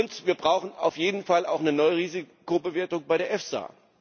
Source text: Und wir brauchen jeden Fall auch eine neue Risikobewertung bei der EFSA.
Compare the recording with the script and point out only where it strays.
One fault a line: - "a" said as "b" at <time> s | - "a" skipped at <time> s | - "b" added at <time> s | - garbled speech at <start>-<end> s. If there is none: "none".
- "auf" added at 0.8 s